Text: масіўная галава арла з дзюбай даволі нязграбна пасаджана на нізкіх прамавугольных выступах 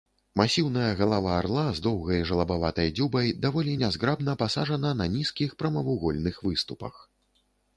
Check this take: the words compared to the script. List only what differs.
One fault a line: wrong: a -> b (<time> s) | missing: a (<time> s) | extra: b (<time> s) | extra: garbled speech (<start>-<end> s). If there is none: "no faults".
extra: доўгай жалабаватай (1.9 s)